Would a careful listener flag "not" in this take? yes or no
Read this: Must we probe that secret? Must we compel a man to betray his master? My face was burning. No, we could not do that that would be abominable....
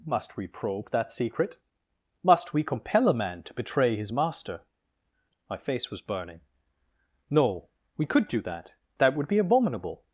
yes